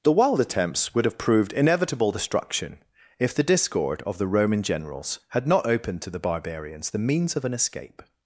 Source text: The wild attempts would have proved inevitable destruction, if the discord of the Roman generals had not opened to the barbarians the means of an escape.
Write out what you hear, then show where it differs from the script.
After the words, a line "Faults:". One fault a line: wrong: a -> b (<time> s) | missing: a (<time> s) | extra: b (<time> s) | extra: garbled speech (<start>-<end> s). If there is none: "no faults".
The wild attempts would have proved inevitable destruction, if the discord of the Roman generals had not opened to the barbarians the means of an escape.
Faults:
no faults